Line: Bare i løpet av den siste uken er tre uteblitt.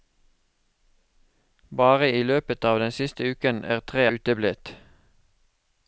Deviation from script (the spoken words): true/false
false